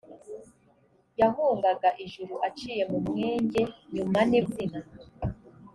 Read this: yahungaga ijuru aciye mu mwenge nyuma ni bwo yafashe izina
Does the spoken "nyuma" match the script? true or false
true